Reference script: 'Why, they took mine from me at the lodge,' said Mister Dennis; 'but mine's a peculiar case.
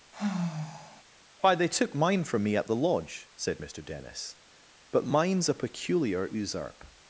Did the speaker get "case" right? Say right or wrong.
wrong